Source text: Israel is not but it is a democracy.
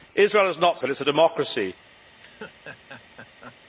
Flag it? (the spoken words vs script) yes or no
no